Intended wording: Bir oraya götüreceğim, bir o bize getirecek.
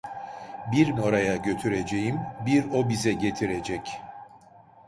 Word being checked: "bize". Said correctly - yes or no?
yes